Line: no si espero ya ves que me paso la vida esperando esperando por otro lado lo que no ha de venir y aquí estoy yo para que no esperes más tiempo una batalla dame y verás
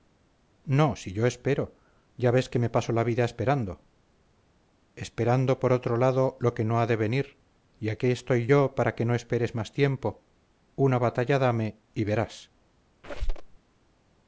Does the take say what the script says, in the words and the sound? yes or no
no